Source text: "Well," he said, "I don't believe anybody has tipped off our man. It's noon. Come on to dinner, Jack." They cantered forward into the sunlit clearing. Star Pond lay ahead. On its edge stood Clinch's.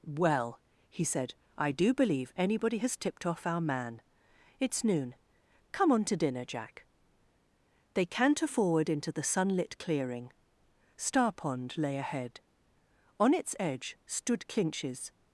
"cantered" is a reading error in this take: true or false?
true